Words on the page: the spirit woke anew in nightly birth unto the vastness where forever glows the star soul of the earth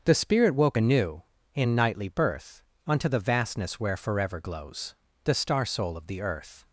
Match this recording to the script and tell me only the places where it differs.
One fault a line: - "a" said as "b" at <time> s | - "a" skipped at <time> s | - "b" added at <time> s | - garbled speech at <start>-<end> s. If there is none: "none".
none